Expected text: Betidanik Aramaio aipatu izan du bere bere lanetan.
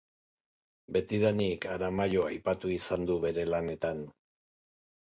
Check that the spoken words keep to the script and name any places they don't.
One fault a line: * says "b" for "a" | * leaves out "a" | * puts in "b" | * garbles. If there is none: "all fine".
* leaves out "bere"